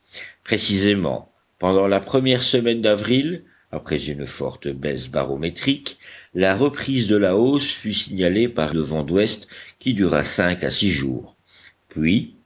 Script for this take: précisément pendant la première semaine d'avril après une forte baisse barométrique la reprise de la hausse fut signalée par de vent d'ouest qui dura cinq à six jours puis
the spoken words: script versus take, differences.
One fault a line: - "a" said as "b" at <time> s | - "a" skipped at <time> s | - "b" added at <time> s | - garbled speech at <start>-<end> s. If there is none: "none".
none